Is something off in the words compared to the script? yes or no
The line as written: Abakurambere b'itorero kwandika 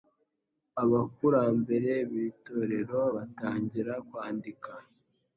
yes